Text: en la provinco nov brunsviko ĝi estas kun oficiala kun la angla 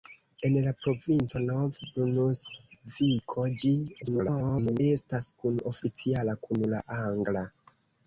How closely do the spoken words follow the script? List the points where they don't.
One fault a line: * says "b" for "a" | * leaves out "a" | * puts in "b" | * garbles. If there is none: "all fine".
* garbles